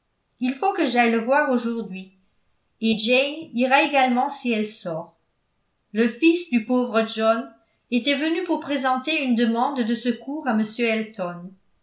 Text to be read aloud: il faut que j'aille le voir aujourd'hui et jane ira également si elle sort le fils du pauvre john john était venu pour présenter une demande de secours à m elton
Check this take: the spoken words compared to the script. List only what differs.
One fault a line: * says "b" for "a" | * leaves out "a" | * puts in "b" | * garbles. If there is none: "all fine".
* leaves out "john"